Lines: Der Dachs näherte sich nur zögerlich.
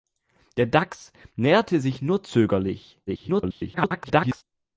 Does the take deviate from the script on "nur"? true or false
false